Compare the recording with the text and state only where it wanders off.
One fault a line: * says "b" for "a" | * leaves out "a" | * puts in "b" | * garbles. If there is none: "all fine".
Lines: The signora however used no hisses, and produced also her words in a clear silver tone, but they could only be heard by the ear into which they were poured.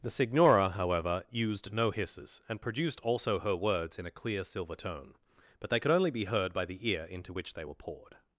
all fine